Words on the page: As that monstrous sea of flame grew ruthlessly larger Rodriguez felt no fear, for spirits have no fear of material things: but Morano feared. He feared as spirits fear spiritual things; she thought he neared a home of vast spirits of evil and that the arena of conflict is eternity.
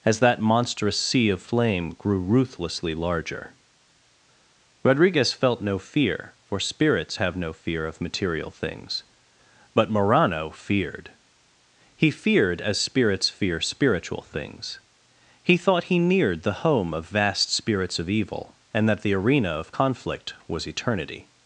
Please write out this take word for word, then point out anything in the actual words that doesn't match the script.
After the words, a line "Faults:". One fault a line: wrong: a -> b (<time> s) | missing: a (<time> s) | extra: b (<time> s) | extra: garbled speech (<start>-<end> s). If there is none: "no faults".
As that monstrous sea of flame grew ruthlessly larger Rodriguez felt no fear, for spirits have no fear of material things: but Morano feared. He feared as spirits fear spiritual things; he thought he neared the home of vast spirits of evil and that the arena of conflict was eternity.
Faults:
wrong: she -> he (15.4 s)
wrong: a -> the (16.4 s)
wrong: is -> was (20.5 s)